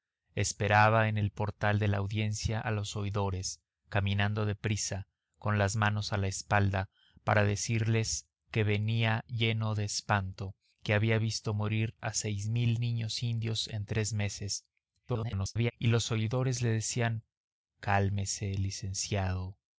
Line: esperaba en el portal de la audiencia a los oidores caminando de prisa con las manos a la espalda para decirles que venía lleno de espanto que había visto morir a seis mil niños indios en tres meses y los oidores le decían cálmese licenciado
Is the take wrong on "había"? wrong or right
right